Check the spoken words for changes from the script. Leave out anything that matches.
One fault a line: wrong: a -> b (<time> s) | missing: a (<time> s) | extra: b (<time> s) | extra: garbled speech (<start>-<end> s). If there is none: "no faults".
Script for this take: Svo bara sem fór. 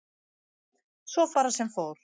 no faults